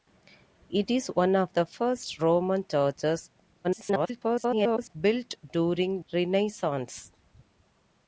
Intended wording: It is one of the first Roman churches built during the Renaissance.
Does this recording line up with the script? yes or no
no